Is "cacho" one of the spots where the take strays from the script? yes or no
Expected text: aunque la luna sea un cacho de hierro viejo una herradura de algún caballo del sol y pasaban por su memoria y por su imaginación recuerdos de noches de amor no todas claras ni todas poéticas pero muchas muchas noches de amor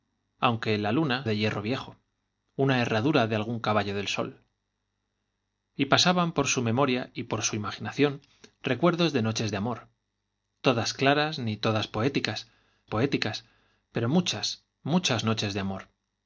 yes